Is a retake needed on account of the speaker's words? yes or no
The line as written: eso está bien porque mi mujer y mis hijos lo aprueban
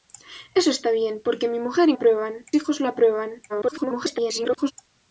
yes